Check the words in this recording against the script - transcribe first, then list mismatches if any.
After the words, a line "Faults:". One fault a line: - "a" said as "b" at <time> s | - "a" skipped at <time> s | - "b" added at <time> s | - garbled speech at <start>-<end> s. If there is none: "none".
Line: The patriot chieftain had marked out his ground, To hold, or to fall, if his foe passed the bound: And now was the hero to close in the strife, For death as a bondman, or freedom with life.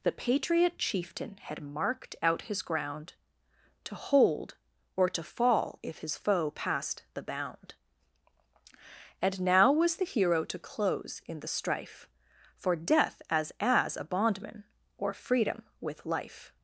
The patriot chieftain had marked out his ground, To hold, or to fall, if his foe passed the bound: And now was the hero to close in the strife, For death as as a bondman, or freedom with life.
Faults:
- "as" added at 13.6 s